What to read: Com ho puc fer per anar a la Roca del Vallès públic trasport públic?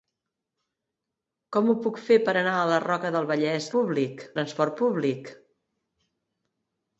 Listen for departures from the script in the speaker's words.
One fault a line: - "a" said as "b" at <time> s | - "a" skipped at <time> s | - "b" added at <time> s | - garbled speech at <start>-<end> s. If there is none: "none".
none